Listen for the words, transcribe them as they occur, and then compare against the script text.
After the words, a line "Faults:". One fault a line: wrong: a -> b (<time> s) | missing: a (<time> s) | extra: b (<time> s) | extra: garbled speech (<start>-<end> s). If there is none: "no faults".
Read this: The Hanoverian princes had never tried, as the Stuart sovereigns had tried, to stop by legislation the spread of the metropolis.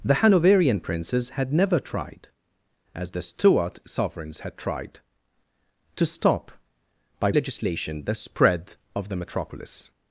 The Hanoverian princes had never tried, as the Stuart sovereigns had tried, to stop by legislation the spread of the metropolis.
Faults:
no faults